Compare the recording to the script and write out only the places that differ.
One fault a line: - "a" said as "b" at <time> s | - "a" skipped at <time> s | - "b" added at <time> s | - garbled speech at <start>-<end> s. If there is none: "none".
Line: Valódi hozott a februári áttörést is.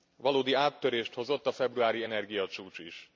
- "áttörést" added at 0.5 s
- "áttörést" said as "energiacsúcs" at 2.0 s